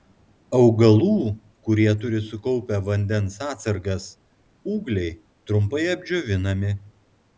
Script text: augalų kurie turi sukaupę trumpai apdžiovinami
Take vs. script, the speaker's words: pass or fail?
fail